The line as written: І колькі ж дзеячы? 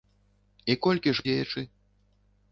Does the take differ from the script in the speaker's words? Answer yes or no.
no